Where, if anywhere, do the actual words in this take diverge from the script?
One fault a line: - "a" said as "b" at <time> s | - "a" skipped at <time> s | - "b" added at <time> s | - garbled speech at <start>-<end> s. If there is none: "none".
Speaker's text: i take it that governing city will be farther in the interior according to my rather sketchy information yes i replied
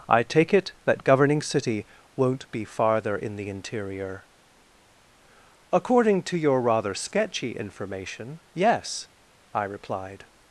- "will" said as "won't" at 2.1 s
- "my" said as "your" at 6.4 s